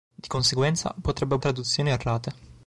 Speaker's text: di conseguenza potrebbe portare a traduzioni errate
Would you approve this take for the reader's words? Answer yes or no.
no